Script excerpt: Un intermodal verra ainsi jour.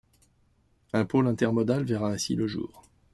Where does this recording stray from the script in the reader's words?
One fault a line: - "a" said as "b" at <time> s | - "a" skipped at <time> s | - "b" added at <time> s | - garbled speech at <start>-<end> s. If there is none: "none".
- "pôle" added at 1.1 s
- "le" added at 2.3 s